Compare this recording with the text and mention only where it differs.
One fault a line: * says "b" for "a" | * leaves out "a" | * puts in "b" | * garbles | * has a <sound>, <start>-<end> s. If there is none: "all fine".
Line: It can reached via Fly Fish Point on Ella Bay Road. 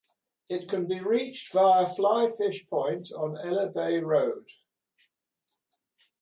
* puts in "be"